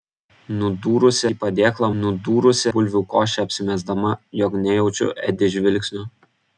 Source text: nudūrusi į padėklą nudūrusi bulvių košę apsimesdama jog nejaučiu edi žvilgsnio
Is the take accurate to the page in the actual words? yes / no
yes